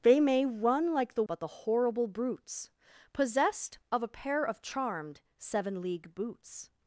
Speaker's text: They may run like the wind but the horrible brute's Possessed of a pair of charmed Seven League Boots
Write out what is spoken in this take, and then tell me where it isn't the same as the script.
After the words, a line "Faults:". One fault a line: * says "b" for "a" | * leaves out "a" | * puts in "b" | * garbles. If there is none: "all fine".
They may run like the but the horrible brute's Possessed of a pair of charmed Seven League Boots
Faults:
* leaves out "wind"